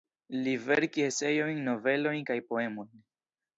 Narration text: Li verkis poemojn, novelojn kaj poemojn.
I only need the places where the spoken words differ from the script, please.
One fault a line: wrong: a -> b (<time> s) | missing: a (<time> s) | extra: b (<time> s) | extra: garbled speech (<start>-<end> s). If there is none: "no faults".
wrong: poemojn -> eseojn (1.1 s)